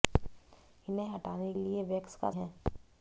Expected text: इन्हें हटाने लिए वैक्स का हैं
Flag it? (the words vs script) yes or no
no